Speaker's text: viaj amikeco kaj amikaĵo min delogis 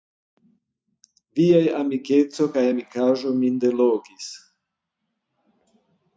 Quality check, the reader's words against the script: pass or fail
pass